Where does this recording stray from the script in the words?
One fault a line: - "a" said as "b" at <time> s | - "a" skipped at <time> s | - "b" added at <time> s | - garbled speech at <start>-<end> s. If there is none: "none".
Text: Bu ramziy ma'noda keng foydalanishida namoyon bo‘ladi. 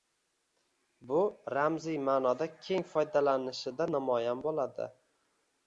none